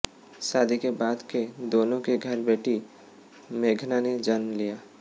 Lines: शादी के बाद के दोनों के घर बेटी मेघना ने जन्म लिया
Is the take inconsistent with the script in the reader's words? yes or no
no